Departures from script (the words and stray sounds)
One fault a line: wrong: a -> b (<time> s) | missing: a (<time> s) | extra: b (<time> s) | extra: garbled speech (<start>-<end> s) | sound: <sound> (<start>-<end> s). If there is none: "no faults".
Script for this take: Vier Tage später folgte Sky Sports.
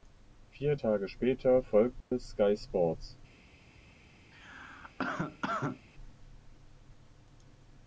sound: dropout (2.0-2.1 s)
sound: cough (4.3-5.9 s)